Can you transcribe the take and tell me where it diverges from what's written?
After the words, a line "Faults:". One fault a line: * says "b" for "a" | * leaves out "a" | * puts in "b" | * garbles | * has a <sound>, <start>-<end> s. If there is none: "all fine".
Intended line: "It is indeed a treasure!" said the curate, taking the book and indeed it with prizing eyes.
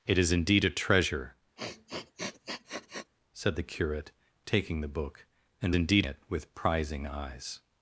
"It is indeed a treasure!" said the curate, taking the book and indeed it with prizing eyes.
Faults:
* has a sniff, 1.6-3.1 s